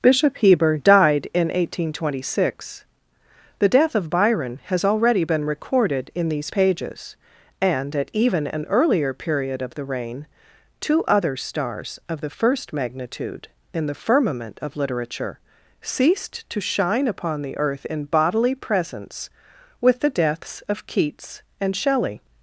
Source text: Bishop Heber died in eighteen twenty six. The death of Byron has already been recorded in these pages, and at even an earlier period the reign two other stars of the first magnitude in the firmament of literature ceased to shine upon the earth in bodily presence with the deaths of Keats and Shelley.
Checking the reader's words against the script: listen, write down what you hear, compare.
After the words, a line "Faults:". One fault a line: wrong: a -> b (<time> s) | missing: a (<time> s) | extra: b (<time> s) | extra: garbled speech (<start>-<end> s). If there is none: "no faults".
Bishop Heber died in eighteen twenty six. The death of Byron has already been recorded in these pages, and at even an earlier period of the reign two other stars of the first magnitude in the firmament of literature ceased to shine upon the earth in bodily presence with the deaths of Keats and Shelley.
Faults:
extra: of (9.6 s)